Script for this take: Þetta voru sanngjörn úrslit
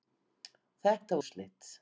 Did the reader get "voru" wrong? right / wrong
wrong